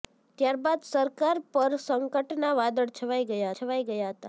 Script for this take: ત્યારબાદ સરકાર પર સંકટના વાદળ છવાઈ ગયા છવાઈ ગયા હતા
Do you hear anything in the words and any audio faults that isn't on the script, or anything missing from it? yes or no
no